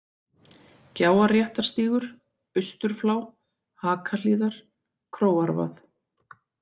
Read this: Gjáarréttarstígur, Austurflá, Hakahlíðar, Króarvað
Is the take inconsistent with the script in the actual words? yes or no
no